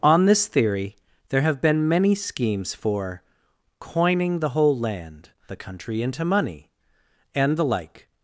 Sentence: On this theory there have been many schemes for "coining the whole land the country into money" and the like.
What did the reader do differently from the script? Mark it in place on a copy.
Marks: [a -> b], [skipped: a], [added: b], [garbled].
On this theory there have been many schemes for "coining the whole land the country into money" and the like.